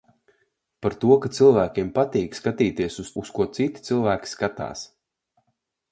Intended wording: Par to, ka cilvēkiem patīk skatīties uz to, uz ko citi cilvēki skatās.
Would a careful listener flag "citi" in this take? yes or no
no